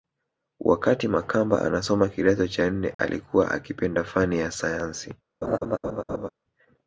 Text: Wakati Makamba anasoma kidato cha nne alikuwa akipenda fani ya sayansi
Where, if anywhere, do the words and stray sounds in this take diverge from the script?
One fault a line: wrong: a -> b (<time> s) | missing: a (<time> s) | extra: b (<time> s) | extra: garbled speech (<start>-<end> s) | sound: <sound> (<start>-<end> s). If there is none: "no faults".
sound: dropout (2.9-3.0 s)
sound: laugh (5.4-6.3 s)